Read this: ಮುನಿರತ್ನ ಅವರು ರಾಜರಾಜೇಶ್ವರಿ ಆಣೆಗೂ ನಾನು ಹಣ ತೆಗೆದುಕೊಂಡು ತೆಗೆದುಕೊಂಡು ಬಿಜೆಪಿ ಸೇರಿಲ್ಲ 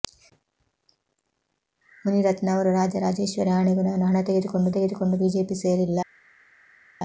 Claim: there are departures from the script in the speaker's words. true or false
false